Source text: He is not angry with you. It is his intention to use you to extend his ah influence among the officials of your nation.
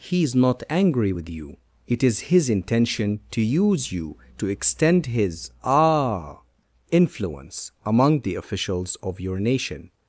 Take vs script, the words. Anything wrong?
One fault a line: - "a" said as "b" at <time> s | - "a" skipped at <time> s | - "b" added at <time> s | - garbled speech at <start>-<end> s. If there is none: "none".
none